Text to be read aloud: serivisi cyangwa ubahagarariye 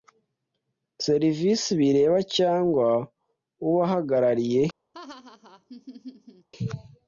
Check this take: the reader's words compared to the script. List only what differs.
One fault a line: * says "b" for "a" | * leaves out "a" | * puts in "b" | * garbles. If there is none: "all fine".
* puts in "bireba"